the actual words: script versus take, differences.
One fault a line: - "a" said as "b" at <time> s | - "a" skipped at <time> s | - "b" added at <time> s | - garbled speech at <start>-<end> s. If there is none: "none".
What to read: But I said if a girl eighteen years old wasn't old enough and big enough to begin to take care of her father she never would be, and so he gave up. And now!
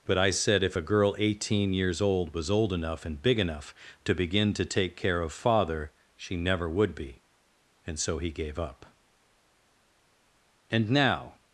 - "wasn't" said as "was" at 2.3 s
- "her" skipped at 5.3 s